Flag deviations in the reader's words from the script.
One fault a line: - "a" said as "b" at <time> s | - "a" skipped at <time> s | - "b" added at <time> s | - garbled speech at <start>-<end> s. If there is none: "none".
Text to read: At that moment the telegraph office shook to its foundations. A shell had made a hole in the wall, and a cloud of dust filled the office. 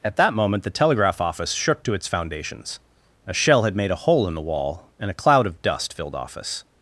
- "the" skipped at 6.1 s